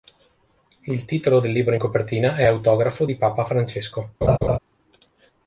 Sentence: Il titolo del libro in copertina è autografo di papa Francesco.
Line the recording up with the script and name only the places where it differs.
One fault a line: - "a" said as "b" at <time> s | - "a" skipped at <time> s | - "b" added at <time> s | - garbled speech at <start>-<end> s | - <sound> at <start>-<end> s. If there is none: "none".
- laugh at 4.2-4.6 s